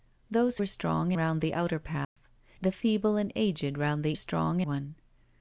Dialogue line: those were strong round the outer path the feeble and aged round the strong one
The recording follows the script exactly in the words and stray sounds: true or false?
false